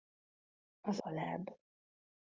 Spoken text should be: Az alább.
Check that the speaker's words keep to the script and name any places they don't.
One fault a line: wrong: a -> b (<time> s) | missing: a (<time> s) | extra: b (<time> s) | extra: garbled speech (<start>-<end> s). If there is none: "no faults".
no faults